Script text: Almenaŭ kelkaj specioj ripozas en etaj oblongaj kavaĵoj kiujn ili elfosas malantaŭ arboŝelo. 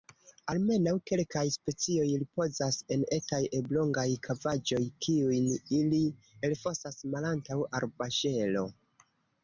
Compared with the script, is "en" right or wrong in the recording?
right